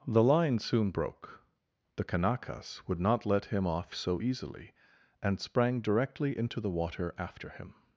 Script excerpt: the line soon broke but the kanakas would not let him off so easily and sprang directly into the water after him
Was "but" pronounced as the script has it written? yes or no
no